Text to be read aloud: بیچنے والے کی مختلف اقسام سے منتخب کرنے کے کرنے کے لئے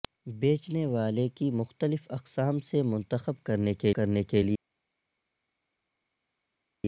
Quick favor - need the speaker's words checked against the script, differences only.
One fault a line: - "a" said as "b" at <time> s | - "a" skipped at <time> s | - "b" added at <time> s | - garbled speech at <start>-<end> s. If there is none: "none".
none